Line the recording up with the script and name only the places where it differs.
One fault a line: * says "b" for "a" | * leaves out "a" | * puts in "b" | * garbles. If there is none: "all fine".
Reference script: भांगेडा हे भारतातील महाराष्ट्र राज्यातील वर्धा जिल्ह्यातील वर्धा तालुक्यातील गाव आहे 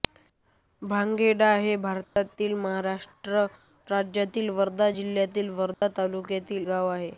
all fine